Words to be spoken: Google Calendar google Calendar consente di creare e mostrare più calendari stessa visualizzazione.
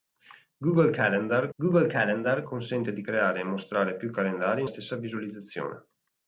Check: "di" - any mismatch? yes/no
no